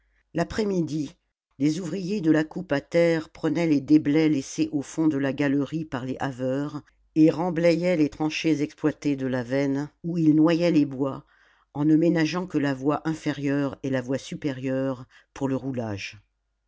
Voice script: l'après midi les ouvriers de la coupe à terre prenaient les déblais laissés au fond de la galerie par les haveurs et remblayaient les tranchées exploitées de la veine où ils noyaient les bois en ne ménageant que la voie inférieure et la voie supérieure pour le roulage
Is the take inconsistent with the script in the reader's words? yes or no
no